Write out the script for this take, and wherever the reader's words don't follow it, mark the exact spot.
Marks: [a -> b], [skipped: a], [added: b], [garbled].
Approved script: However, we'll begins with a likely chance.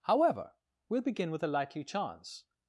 However, we'll [begins -> begin] with a likely chance.